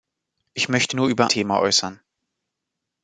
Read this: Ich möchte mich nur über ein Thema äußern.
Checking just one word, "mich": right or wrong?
wrong